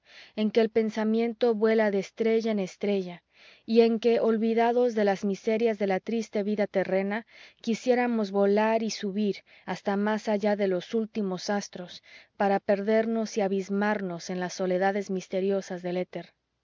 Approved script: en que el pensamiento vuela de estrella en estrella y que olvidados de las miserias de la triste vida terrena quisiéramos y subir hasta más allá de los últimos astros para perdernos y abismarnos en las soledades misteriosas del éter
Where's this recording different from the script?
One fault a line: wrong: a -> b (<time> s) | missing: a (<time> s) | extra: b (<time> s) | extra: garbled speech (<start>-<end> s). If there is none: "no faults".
extra: en (3.8 s)
extra: volar (8.3 s)